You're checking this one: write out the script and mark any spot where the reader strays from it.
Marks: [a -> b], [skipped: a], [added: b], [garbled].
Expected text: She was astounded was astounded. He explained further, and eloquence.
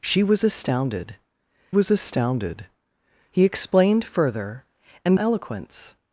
She was astounded was astounded. He explained further, and eloquence.